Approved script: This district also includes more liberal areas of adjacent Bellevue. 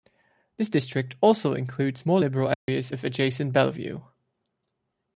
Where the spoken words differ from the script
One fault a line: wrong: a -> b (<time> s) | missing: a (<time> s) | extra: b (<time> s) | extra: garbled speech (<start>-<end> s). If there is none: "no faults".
no faults